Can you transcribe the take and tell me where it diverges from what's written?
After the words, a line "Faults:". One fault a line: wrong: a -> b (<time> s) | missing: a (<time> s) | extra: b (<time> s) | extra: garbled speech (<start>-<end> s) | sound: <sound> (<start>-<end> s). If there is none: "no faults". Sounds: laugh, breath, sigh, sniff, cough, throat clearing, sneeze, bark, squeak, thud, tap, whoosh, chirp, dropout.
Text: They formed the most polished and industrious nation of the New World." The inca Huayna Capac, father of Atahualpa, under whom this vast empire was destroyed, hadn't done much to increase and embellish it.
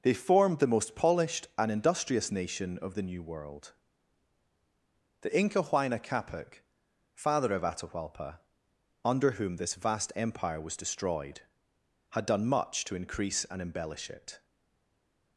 They formed the most polished and industrious nation of the New World." The inca Huayna Capac, father of Atahualpa, under whom this vast empire was destroyed, had done much to increase and embellish it.
Faults:
wrong: hadn't -> had (12.1 s)